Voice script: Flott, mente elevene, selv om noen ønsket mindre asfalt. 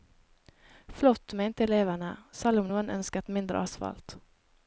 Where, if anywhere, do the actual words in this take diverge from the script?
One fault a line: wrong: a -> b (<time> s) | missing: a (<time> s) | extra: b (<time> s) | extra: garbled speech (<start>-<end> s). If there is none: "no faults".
no faults